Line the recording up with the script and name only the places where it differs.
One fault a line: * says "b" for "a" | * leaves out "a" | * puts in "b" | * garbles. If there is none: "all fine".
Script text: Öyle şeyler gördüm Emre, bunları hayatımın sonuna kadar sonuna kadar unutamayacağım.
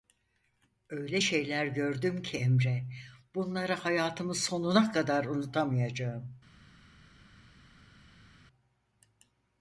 * puts in "ki"
* leaves out "sonuna kadar"